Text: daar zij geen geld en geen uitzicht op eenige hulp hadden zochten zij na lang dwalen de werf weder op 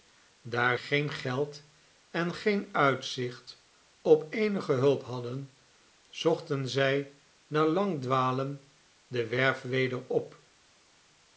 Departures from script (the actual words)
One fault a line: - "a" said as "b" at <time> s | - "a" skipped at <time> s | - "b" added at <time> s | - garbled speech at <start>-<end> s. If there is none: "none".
- "zij" skipped at 0.8 s